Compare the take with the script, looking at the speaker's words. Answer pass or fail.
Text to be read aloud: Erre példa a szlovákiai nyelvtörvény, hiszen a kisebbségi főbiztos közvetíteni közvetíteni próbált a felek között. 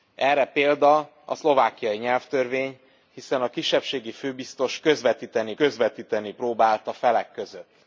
pass